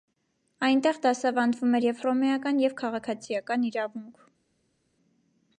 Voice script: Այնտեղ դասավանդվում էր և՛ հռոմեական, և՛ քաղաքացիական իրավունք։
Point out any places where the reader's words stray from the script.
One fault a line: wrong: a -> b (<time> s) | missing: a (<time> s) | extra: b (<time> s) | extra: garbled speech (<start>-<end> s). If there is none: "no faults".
no faults